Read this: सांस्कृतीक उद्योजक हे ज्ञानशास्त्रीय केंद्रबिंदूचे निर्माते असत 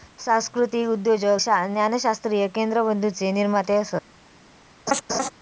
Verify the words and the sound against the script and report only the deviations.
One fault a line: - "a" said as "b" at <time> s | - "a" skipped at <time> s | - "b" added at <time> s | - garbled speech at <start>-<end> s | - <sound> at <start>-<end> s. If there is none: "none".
- "हे" skipped at 1.4 s
- laugh at 4.9-5.3 s